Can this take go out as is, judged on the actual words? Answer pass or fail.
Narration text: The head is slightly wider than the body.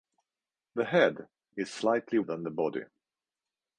fail